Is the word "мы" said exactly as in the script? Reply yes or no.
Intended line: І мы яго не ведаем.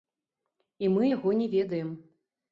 yes